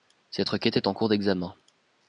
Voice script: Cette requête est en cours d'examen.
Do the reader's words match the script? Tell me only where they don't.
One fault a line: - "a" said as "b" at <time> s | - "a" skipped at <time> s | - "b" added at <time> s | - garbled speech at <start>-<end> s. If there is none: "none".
none